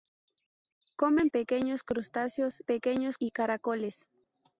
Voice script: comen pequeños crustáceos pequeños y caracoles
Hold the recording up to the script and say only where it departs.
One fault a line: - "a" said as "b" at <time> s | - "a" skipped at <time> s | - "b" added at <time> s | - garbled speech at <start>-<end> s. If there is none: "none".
none